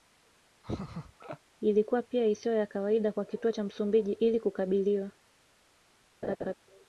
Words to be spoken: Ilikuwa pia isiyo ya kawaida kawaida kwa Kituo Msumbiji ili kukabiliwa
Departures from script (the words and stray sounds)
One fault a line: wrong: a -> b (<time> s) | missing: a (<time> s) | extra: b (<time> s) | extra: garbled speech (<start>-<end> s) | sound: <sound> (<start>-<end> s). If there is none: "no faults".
sound: laugh (0.6-1.4 s)
missing: kawaida (3.1 s)
extra: cha (3.5 s)
sound: laugh (6.2-6.5 s)